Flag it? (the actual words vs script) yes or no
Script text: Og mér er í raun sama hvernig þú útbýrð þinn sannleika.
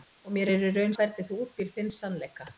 yes